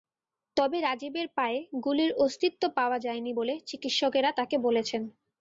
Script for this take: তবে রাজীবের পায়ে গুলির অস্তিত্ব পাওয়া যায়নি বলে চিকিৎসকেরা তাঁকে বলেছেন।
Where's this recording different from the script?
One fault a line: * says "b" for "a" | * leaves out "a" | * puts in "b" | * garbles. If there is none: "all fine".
all fine